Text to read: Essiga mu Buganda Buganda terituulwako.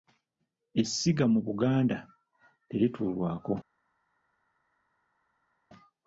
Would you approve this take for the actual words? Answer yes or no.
no